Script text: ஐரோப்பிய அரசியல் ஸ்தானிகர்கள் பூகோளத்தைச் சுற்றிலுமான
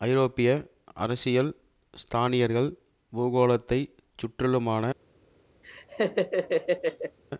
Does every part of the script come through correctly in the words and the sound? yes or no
no